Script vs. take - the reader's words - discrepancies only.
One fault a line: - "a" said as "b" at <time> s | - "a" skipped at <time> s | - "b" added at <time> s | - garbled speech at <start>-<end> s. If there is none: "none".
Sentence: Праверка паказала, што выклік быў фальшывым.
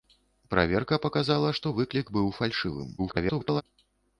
- garbled speech at 3.0-3.6 s